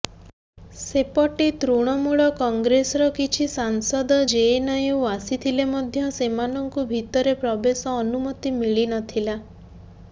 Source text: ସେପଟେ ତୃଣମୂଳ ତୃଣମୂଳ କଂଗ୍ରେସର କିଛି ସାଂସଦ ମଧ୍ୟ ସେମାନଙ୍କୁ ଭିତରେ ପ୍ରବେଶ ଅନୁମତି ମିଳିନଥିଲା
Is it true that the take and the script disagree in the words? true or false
true